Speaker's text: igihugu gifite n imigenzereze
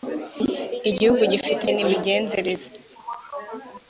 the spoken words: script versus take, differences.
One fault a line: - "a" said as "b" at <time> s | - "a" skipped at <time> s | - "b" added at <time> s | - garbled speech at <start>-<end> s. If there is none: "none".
none